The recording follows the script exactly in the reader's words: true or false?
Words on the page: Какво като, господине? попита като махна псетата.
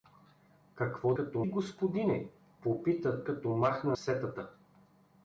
true